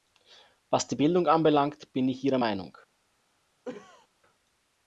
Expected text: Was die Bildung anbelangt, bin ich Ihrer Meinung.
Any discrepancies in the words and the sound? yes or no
yes